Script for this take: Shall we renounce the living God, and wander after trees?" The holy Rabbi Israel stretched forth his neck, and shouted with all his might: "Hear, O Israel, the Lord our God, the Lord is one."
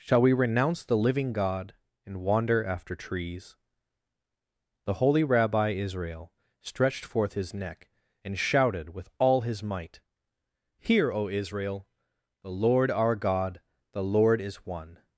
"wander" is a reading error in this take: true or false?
false